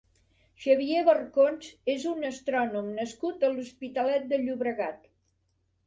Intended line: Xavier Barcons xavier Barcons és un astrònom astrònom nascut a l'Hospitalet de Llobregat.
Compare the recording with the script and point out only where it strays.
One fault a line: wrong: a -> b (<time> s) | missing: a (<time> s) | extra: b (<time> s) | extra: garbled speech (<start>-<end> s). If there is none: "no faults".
missing: xavier Barcons (1.7 s)
missing: astrònom (2.9 s)